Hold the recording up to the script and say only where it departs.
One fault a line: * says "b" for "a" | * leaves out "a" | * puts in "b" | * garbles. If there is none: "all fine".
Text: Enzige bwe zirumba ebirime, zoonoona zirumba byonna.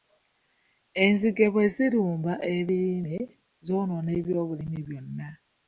* says "ebyobulimi" for "zirumba"